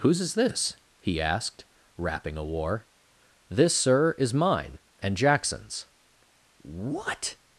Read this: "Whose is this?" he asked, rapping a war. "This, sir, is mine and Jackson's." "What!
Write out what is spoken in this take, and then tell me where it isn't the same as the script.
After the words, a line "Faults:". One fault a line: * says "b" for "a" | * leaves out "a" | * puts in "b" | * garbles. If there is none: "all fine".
"Whose is this?" he asked, rapping a war. "This, sir, is mine and Jackson's." "What!
Faults:
all fine